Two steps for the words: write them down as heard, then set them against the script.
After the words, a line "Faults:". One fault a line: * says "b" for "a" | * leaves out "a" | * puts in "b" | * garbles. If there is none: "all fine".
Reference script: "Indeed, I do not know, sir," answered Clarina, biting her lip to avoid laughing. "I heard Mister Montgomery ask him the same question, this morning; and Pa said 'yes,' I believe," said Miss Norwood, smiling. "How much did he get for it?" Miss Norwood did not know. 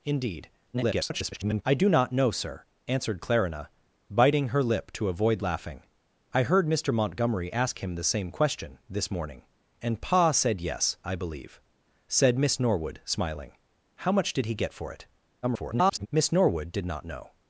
"Indeed, [garbled] I do not know, sir," answered Clarina, biting her lip to avoid laughing. "I heard Mister Montgomery ask him the same question, this morning; and Pa said 'yes,' I believe," said Miss Norwood, smiling. "How much did he get for it?" [garbled] Miss Norwood did not know.
Faults:
* garbles
* garbles